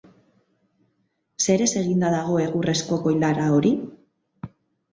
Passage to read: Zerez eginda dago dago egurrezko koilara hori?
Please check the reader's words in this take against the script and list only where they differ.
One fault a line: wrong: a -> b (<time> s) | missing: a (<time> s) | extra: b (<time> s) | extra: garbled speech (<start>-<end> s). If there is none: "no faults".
missing: dago (2.4 s)